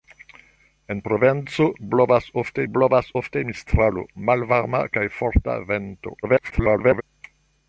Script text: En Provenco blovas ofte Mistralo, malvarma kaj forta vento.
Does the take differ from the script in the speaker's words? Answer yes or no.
yes